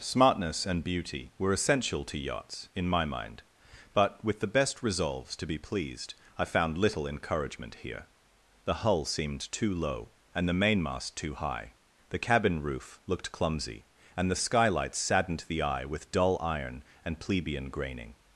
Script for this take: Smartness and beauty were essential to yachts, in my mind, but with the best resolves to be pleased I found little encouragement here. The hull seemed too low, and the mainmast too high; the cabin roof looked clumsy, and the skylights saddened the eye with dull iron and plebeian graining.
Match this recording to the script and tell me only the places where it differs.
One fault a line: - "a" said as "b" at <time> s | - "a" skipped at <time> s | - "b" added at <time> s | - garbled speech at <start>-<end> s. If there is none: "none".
none